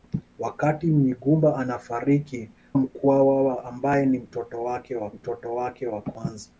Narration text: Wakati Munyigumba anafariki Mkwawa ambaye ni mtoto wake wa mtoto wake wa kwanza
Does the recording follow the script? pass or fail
pass